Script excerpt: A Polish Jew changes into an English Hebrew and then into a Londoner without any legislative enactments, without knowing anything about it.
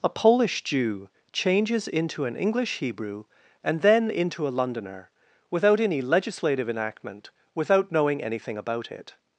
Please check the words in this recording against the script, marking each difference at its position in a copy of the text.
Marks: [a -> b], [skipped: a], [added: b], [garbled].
A Polish Jew changes into an English Hebrew and then into a Londoner without any legislative [enactments, -> enactment] without knowing anything about it.